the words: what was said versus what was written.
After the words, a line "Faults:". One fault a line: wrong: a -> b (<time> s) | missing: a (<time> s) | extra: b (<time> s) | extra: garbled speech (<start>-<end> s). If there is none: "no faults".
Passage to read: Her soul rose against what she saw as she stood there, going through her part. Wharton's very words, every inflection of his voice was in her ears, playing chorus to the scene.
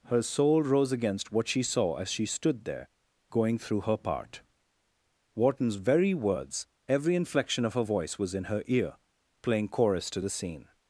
Her soul rose against what she saw as she stood there, going through her part. Wharton's very words, every inflection of her voice was in her ear, playing chorus to the scene.
Faults:
wrong: his -> her (7.7 s)
wrong: ears -> ear (8.7 s)